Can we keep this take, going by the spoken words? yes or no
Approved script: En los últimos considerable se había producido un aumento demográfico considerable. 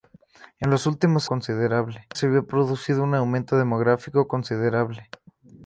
yes